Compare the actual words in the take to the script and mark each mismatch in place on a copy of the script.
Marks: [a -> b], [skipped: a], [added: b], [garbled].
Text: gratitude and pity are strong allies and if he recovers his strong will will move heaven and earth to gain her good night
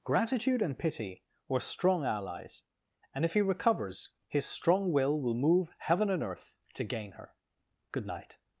gratitude and pity [are -> were] strong allies and if he recovers his strong will will move heaven and earth to gain her good night